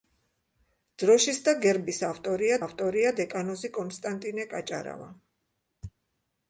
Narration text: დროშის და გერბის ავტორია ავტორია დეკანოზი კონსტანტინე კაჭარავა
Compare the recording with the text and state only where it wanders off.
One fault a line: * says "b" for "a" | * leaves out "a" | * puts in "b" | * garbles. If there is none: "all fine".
all fine